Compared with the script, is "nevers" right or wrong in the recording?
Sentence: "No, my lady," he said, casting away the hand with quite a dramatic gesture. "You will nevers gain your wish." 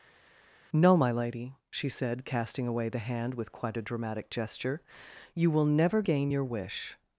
wrong